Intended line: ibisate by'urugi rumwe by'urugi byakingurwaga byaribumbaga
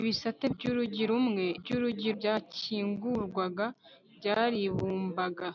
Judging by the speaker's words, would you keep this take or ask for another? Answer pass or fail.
pass